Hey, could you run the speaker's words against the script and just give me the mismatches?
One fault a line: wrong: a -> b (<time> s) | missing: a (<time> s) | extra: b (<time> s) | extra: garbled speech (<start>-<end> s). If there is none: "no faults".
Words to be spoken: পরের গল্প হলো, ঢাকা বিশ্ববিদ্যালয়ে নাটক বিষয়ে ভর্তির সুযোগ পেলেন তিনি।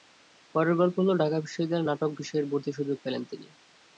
no faults